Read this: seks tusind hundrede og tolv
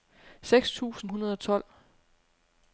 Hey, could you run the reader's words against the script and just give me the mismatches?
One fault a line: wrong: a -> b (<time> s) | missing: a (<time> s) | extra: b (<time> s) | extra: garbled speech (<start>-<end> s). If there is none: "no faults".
no faults